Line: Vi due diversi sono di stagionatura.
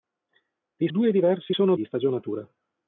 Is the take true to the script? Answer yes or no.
yes